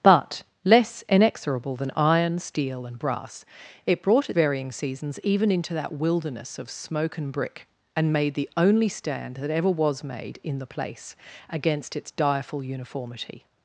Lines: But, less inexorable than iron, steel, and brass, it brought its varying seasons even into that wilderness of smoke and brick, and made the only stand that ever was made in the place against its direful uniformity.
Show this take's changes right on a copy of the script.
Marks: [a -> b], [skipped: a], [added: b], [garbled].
But, less inexorable than iron, steel, and brass, it brought [skipped: its] varying seasons even into that wilderness of smoke and brick, and made the only stand that ever was made in the place against its direful uniformity.